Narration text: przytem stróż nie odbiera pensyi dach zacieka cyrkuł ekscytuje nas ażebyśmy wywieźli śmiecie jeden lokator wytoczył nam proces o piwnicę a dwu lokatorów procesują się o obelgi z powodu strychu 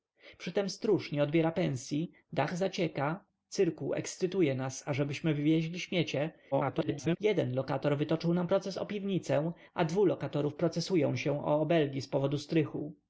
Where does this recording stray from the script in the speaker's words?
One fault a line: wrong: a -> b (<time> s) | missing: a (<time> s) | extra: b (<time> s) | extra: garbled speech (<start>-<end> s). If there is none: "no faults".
extra: garbled speech (6.5-7.2 s)